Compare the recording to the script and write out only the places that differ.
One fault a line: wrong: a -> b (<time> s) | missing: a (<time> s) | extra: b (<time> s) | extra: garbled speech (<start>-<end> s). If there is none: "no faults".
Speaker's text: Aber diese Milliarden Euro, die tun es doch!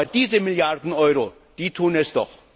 no faults